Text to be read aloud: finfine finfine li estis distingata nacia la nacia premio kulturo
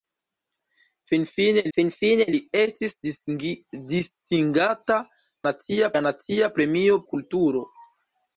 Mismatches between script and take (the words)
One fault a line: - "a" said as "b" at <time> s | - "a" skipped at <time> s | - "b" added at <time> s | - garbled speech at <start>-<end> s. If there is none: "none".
none